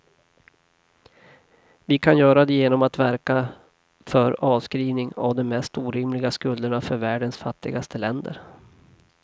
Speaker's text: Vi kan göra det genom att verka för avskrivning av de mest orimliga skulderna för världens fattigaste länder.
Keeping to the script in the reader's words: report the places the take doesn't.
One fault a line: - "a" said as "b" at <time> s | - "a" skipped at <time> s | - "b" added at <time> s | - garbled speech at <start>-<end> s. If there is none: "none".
none